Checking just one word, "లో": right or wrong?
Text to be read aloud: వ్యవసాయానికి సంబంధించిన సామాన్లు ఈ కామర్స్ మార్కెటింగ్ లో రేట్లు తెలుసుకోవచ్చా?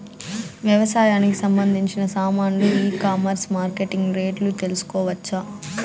wrong